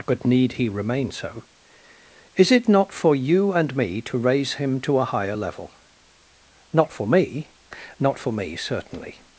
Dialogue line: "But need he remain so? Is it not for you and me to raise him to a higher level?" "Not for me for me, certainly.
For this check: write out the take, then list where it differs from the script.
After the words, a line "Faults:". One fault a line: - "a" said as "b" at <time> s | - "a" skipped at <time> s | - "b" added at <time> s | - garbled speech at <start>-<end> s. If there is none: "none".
"But need he remain so? Is it not for you and me to raise him to a higher level?" "Not for me not for me, certainly.
Faults:
- "not" added at 8.0 s